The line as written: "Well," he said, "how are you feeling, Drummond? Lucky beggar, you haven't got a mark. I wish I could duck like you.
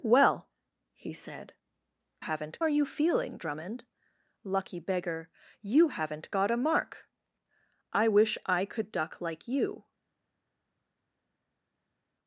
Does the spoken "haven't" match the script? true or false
true